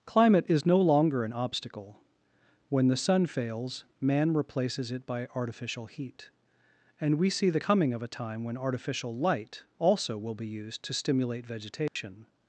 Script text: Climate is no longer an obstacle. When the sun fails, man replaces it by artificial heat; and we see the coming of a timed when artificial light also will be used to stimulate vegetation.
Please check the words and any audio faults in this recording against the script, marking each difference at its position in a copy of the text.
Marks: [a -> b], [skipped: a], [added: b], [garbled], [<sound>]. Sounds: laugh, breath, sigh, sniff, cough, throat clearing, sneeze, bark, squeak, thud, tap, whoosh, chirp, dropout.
Climate is no longer an obstacle. When the sun fails, man replaces it by artificial heat; and we see the coming of a [timed -> time] when artificial light also will be used to stimulate vegetation. [dropout]